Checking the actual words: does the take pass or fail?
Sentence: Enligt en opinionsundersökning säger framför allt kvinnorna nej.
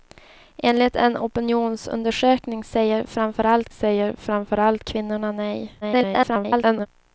fail